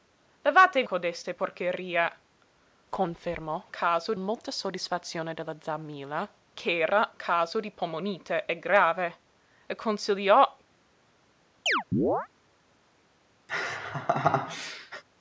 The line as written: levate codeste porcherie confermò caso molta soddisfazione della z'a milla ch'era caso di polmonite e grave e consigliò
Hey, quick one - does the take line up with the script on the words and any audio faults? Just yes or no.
no